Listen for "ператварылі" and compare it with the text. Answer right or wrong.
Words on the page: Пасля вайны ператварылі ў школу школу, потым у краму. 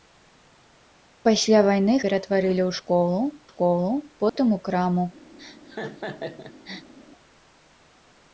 right